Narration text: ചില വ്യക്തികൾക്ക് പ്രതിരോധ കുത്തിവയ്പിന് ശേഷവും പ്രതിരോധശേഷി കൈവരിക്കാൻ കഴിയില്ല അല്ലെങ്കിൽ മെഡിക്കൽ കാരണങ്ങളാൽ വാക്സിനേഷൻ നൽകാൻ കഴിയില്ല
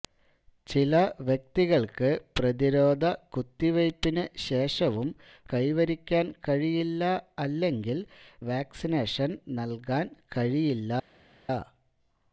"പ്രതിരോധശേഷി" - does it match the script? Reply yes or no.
no